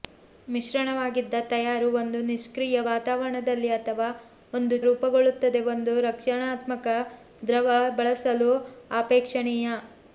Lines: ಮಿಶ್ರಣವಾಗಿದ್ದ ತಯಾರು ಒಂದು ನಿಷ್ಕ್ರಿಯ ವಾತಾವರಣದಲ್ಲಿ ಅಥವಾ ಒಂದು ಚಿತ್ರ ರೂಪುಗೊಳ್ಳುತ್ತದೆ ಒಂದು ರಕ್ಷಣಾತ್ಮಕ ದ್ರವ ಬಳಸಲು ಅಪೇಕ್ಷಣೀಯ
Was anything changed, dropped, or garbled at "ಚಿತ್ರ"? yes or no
yes